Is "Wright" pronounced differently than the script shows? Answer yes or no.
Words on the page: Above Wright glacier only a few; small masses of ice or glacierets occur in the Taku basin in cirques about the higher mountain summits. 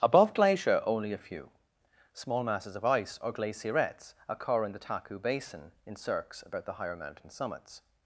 yes